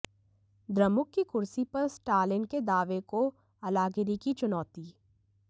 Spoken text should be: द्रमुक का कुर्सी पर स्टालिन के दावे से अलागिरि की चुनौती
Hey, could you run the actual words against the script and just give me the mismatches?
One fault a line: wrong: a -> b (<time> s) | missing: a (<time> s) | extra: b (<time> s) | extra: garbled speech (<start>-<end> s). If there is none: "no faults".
wrong: का -> की (1.1 s)
wrong: से -> को (3.1 s)